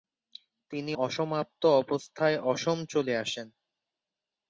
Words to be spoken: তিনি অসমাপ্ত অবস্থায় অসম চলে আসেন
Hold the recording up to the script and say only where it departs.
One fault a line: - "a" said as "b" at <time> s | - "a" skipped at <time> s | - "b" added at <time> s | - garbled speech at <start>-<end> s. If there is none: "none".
none